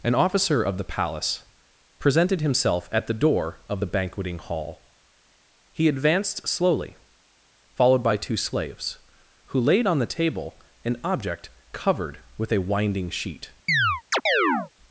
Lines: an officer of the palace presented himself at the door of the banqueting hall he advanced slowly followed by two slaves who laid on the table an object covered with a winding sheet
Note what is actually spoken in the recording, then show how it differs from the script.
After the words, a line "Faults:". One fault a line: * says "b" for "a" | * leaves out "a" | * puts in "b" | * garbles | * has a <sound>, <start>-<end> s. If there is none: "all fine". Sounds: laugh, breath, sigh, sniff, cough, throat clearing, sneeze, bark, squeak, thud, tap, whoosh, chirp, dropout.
an officer of the palace presented himself at the door of the banqueting hall he advanced slowly followed by two slaves who laid on the table an object covered with a winding sheet
Faults:
* has a chirp, 13.7-14.7 s